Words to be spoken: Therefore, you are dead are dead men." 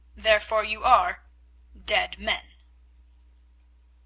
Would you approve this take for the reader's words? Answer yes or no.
no